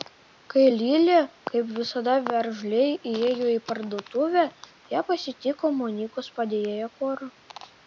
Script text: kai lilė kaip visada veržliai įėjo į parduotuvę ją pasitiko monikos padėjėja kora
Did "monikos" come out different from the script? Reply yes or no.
no